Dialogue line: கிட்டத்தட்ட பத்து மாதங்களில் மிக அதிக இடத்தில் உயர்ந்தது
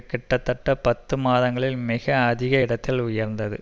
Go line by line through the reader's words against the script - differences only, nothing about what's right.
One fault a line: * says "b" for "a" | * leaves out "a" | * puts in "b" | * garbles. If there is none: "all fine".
all fine